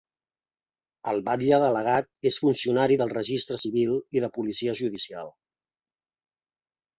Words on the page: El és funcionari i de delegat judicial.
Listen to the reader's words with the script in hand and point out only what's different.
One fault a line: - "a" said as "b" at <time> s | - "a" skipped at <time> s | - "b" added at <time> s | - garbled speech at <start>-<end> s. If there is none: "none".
- "batlle delegat" added at 1.3 s
- "del registre civil" added at 3.0 s
- "delegat" said as "policia" at 4.4 s